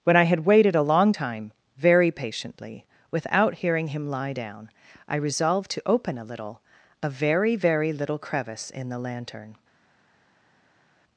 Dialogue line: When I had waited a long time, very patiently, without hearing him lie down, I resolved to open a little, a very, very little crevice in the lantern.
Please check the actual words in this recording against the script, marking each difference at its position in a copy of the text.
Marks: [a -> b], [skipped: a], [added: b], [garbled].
When I had waited a long time, very patiently, without hearing him lie down, I resolved to open a little, a very, very little crevice in the lantern.